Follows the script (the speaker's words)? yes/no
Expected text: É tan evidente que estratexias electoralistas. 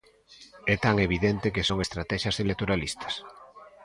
no